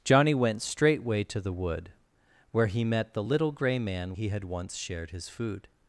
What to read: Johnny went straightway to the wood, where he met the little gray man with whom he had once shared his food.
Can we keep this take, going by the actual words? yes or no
no